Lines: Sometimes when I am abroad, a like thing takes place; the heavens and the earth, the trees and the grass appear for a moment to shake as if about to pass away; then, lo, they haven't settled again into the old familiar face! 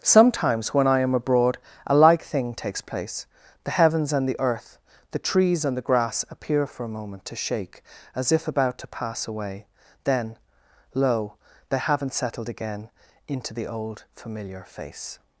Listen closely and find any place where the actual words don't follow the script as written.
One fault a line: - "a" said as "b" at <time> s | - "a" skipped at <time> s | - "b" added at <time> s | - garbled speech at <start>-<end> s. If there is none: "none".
none